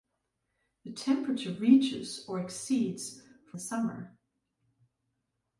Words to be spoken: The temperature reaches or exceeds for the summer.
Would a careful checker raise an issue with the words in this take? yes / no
no